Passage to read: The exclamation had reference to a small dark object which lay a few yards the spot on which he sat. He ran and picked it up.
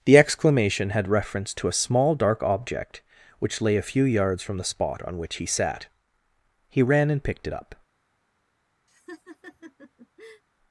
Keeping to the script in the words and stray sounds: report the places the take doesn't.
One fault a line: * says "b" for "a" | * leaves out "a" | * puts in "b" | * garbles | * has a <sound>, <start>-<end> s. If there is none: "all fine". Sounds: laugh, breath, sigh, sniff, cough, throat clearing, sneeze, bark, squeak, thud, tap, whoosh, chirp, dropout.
* puts in "from"
* has a laugh, 8.9-10.4 s